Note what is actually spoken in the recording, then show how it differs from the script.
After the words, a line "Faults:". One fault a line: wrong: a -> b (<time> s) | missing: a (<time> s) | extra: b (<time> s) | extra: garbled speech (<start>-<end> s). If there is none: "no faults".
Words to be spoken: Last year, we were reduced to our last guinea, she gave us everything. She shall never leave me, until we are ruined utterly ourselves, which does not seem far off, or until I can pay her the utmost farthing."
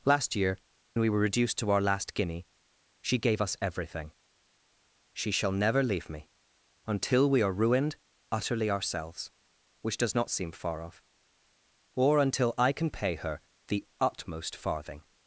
Last year, we were reduced to our last guinea, she gave us everything. She shall never leave me, until we are ruined utterly ourselves, which does not seem far off, or until I can pay her the utmost farthing."
Faults:
no faults